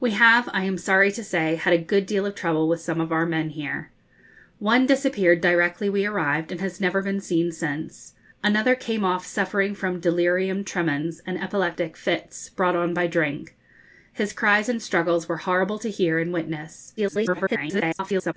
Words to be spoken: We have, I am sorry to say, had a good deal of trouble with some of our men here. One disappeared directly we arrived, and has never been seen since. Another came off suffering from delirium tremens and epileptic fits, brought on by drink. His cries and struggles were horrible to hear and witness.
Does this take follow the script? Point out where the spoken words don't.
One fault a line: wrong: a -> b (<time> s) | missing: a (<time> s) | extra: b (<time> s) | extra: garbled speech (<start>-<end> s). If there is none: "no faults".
extra: garbled speech (17.0-18.3 s)